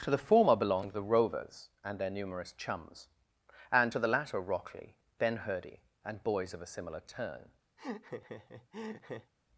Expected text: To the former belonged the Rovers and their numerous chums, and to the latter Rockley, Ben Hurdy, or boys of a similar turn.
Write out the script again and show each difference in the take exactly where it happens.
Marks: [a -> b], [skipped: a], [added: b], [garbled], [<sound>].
To the former belonged the Rovers and their numerous chums, and to the latter Rockley, Ben Hurdy, [or -> and] boys of a similar turn. [laugh]